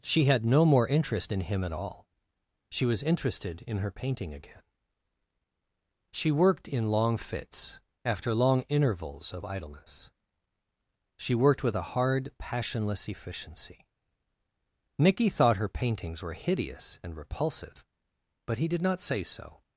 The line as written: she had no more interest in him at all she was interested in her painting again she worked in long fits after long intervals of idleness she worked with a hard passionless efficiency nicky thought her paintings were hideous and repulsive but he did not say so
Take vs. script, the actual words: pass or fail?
pass